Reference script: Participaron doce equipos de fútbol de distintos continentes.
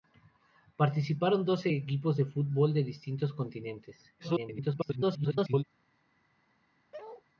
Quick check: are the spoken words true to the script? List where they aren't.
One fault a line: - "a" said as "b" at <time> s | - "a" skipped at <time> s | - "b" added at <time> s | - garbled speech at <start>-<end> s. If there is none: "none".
- garbled speech at 4.2-5.6 s